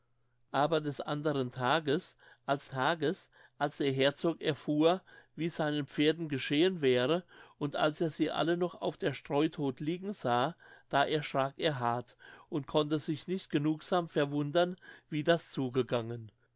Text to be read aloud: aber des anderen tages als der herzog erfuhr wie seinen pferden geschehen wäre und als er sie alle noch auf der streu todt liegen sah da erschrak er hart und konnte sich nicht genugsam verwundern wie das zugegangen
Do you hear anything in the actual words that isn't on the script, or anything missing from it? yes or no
yes